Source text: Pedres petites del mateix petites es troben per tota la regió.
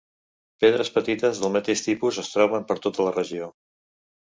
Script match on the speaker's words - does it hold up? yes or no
no